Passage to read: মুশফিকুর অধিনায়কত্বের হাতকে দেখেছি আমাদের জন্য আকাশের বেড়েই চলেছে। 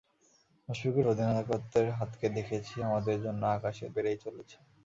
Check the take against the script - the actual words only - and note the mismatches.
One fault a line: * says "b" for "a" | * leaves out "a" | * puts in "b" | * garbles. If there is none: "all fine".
all fine